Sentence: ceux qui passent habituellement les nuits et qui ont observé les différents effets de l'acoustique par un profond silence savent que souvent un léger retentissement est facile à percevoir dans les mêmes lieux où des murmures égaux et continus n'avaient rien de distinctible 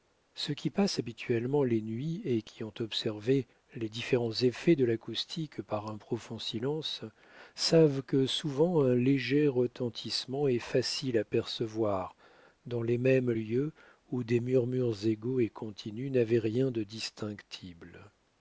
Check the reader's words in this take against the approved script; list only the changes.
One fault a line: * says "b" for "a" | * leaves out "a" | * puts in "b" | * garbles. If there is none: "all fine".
all fine